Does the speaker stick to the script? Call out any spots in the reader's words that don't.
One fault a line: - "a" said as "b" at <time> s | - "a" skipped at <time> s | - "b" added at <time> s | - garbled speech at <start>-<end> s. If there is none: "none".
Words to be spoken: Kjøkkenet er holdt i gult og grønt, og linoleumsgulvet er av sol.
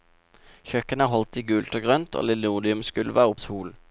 none